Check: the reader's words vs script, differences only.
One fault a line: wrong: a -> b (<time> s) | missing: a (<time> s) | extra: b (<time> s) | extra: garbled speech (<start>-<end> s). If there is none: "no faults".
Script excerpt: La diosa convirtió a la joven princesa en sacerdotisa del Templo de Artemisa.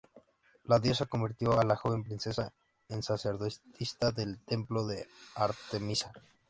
no faults